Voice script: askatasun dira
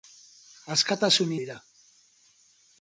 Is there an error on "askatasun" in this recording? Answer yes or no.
no